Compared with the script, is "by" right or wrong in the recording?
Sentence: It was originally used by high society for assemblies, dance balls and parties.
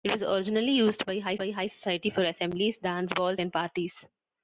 right